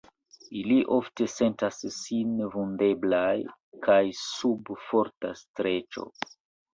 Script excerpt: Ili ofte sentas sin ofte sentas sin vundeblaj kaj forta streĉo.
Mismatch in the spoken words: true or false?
true